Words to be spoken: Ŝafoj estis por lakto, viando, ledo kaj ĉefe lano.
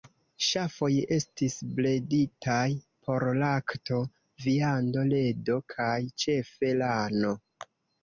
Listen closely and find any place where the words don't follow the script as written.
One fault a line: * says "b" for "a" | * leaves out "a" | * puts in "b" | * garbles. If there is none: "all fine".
* puts in "breditaj"